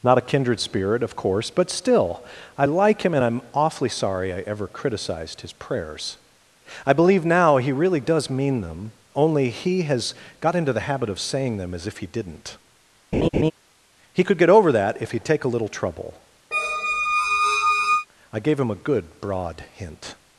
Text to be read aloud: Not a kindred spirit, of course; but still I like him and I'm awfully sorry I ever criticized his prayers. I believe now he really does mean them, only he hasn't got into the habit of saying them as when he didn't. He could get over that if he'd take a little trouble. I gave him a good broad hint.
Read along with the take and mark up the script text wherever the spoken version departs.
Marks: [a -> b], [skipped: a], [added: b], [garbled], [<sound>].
Not a kindred spirit, of course; but still I like him and I'm awfully sorry I ever criticized his prayers. I believe now he really does mean them, only he [hasn't -> has] got into the habit of saying them as [when -> if] he didn't. [laugh] He could get over that if he'd take a little trouble. [squeak] I gave him a good broad hint.